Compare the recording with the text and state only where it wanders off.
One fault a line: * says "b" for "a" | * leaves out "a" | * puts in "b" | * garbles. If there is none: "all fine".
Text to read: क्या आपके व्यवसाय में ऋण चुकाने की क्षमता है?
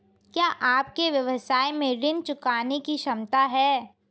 all fine